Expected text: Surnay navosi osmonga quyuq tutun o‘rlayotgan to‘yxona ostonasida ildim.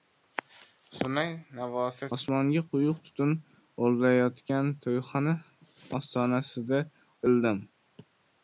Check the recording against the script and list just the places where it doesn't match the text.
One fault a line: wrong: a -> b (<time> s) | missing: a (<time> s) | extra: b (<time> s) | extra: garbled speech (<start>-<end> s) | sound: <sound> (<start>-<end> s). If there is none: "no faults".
no faults